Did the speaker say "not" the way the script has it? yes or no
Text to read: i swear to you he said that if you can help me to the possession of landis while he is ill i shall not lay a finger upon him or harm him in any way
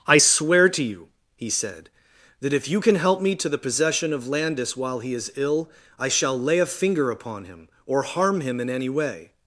no